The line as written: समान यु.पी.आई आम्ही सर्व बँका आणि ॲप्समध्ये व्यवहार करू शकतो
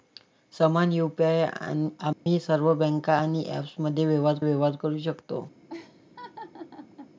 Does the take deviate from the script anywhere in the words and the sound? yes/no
yes